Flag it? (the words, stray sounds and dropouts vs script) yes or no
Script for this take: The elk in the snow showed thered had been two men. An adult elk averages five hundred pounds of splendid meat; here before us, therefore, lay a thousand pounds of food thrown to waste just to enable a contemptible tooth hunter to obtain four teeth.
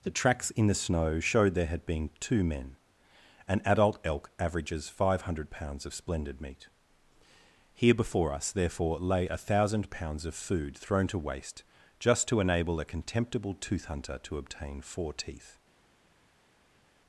yes